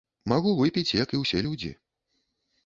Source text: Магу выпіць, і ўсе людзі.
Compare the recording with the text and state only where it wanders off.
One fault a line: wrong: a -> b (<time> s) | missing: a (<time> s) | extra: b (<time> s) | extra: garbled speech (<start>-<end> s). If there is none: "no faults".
extra: як (1.0 s)